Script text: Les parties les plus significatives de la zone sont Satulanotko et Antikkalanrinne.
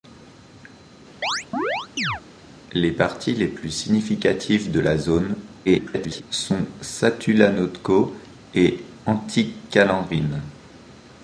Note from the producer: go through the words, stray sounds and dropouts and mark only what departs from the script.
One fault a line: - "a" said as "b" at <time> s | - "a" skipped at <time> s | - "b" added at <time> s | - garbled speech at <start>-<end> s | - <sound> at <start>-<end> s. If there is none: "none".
- chirp at 1.2-2.2 s
- garbled speech at 5.6-6.2 s